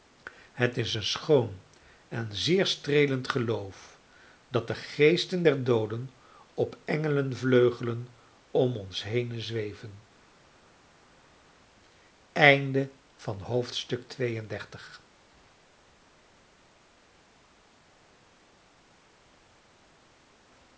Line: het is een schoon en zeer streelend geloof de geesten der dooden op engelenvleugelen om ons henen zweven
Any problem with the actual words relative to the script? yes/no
yes